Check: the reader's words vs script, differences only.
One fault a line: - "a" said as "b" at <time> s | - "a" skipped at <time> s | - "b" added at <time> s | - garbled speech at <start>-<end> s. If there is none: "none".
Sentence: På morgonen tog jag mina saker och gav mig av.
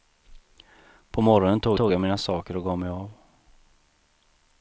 - "tog" added at 1.7 s